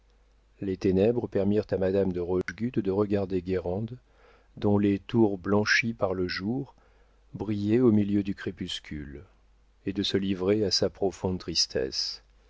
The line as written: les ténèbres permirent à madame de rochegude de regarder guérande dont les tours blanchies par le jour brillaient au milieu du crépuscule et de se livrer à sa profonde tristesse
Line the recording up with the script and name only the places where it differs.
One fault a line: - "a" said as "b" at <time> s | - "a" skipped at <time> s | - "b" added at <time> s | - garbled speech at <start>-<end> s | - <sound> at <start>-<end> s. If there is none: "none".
- dropout at 2.4-2.5 s